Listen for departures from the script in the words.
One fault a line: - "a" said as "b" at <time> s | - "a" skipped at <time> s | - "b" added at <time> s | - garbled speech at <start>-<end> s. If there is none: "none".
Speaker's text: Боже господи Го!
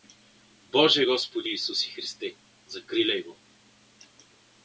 - "Исусе Христе закриляй" added at 1.5 s